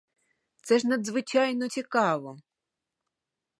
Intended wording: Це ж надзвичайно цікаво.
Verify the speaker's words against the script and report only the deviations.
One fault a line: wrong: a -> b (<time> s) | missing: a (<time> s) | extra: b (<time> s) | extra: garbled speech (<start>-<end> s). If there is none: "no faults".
no faults